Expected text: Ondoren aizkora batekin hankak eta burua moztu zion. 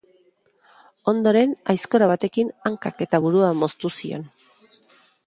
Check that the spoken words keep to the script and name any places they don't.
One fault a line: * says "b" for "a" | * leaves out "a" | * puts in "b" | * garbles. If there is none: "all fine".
all fine